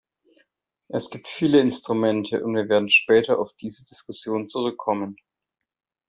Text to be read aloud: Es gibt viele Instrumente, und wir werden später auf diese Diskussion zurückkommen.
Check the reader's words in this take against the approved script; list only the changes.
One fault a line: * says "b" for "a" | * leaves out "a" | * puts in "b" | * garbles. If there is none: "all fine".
all fine